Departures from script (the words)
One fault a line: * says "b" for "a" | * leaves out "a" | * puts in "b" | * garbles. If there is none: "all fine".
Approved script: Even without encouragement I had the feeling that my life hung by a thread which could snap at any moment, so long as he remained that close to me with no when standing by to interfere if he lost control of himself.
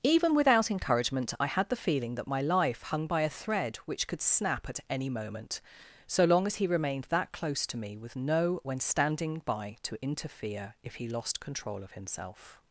all fine